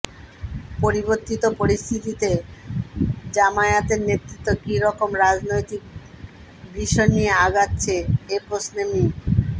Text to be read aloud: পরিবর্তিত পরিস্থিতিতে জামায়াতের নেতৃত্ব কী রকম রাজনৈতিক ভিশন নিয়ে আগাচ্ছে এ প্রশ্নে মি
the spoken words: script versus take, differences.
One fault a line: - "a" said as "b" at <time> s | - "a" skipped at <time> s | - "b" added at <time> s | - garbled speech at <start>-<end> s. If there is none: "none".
none